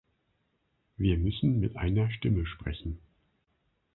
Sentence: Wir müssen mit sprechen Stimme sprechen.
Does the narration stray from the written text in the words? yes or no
yes